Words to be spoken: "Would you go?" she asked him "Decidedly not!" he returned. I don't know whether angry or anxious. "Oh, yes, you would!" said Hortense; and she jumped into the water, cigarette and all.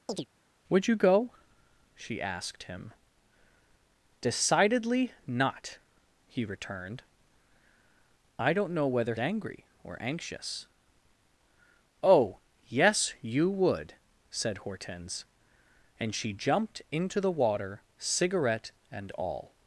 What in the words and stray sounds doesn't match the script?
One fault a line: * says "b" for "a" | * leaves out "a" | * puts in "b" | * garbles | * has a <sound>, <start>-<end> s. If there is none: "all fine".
* has a chirp, 0.1-0.3 s